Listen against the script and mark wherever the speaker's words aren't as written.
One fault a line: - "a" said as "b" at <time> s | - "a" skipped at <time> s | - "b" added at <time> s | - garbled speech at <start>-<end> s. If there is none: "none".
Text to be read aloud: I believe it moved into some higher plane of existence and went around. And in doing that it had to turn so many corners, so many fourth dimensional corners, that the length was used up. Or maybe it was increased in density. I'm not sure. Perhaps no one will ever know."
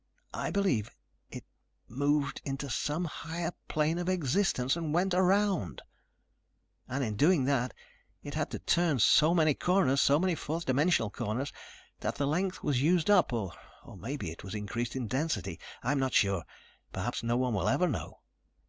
none